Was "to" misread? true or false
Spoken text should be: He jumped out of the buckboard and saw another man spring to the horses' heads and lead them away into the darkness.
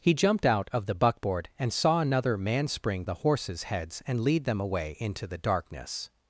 true